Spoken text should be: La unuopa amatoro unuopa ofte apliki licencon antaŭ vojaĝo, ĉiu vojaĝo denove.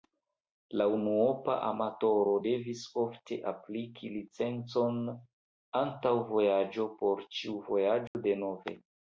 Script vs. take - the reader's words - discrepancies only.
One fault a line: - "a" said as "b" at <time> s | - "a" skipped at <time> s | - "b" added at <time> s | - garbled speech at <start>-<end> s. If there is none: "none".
- "unuopa" said as "devis" at 2.4 s
- "por" added at 7.0 s